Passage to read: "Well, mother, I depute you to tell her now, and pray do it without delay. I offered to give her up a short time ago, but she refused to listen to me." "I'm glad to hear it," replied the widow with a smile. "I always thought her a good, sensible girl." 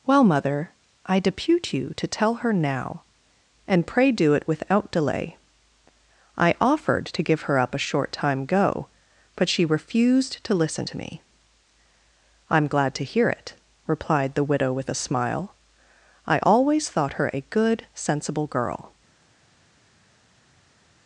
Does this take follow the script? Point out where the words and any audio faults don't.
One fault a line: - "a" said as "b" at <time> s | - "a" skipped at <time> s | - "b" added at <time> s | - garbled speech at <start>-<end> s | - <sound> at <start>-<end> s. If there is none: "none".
- "ago" said as "go" at 8.4 s